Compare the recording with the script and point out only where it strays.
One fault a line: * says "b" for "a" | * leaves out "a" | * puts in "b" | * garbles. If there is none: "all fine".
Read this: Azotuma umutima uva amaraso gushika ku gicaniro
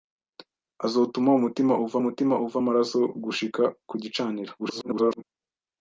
* puts in "umutima uva"
* garbles